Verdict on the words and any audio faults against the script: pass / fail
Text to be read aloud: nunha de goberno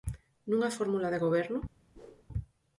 fail